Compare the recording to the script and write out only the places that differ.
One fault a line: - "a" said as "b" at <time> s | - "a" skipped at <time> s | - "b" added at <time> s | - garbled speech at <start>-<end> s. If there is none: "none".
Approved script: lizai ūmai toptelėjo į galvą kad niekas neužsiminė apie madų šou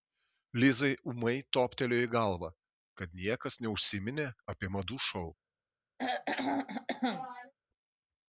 none